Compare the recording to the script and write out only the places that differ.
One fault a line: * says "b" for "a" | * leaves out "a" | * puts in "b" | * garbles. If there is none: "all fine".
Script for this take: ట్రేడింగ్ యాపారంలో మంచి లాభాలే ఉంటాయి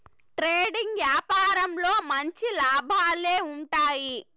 all fine